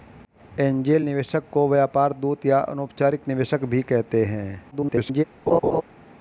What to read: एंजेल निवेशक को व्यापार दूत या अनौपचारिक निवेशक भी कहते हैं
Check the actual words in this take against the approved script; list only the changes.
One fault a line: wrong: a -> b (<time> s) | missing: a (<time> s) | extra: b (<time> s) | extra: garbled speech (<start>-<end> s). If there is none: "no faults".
extra: garbled speech (4.7-5.2 s)